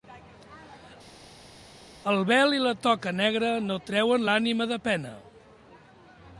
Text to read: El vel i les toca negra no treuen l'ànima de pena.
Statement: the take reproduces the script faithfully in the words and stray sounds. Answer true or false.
false